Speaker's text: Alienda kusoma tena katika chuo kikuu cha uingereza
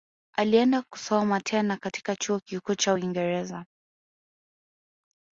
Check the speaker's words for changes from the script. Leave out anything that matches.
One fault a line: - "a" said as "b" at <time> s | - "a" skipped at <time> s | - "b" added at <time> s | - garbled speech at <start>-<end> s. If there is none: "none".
none